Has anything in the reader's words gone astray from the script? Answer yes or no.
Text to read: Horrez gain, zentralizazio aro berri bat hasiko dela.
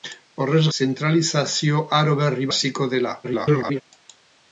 yes